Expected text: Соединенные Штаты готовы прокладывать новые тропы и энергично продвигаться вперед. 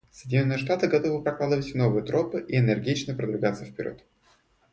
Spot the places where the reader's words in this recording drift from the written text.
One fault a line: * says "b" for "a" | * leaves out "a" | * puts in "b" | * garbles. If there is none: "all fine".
all fine